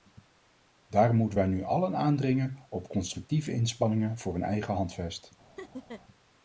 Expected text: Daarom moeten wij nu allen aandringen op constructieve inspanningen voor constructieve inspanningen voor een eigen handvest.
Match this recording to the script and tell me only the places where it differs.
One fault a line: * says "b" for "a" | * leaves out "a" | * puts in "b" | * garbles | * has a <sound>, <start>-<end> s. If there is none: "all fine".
* leaves out "constructieve inspanningen voor"
* has a laugh, 5.6-6.0 s